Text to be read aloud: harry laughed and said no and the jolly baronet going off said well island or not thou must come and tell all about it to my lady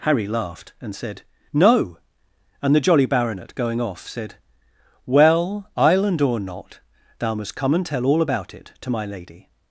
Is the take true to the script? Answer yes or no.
yes